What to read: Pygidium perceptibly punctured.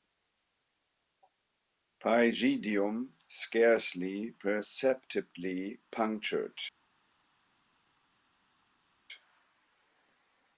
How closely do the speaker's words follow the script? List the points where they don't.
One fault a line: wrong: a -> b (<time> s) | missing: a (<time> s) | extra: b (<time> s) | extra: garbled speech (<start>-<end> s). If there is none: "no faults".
extra: scarcely (3.3 s)